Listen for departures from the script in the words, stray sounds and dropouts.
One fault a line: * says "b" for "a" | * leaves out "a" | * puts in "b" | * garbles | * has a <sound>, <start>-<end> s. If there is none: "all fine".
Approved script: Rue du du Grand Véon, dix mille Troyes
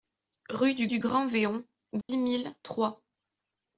* has a dropout, 2.0-2.1 s